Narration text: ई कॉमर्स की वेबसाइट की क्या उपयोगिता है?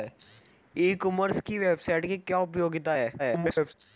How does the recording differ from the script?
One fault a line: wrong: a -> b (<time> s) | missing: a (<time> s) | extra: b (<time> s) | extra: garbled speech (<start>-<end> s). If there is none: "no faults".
extra: garbled speech (3.2-3.7 s)